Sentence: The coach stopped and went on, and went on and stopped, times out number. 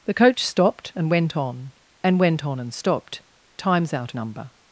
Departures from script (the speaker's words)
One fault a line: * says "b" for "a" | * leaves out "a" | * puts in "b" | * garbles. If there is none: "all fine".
all fine